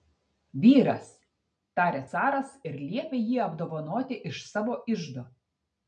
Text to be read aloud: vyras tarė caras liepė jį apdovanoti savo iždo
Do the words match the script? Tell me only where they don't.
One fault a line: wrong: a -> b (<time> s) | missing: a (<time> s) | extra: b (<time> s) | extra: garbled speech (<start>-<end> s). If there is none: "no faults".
extra: ir (2.7 s)
extra: iš (4.3 s)